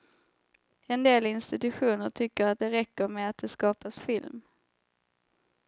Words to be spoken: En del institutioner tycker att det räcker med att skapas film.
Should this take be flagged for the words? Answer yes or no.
yes